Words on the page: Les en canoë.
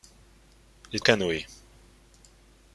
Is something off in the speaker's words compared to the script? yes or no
no